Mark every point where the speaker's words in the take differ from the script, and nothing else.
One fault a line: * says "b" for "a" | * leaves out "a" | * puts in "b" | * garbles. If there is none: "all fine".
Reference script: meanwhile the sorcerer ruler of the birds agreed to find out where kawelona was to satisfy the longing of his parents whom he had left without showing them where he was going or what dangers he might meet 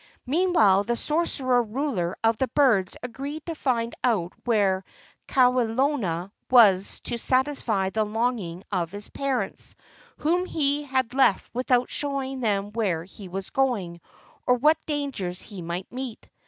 all fine